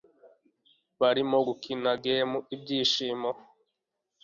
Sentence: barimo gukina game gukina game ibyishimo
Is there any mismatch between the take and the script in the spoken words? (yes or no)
yes